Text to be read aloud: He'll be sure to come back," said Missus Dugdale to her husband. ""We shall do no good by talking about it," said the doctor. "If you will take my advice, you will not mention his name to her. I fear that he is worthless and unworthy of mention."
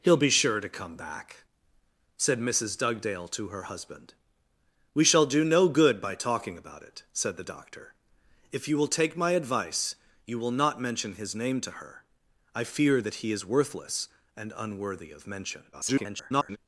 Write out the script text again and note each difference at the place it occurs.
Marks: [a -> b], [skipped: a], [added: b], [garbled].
He'll be sure to come back," said Missus Dugdale to her husband. ""We shall do no good by talking about it," said the doctor. "If you will take my advice, you will not mention his name to her. I fear that he is worthless and unworthy of mention." [garbled]